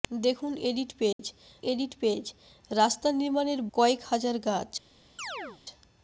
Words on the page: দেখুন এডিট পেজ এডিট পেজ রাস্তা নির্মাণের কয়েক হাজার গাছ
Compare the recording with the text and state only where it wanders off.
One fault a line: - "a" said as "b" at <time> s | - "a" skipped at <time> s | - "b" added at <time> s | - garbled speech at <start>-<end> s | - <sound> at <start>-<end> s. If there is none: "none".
- dropout at 1.1-1.2 s
- chirp at 5.2-5.6 s